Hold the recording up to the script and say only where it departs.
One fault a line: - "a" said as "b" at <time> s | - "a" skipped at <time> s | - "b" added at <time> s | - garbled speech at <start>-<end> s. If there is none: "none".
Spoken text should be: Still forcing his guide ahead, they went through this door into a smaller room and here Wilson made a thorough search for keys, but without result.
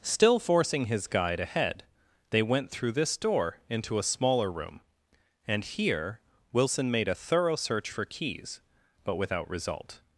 none